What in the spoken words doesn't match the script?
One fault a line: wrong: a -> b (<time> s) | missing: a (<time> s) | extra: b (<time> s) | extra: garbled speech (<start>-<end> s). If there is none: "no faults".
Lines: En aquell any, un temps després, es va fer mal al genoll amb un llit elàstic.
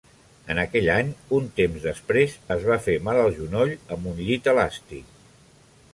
no faults